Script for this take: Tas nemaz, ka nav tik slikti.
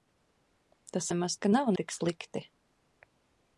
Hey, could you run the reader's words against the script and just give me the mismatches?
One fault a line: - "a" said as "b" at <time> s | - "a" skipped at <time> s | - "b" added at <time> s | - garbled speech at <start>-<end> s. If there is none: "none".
none